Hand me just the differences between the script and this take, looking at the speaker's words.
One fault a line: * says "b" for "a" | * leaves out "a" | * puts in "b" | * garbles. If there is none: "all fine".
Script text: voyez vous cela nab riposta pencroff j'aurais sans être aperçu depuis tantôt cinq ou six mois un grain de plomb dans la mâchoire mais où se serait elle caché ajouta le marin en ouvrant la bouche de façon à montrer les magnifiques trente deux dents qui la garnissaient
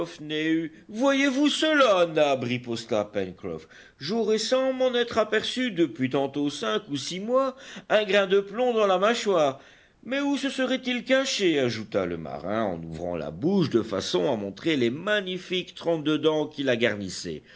* puts in "m'en"
* says "il" for "elle"